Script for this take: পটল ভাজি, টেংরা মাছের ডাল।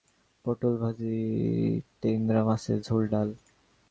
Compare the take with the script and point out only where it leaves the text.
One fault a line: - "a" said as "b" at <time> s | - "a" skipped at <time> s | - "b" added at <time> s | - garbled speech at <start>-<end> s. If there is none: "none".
- "ঝোল" added at 2.8 s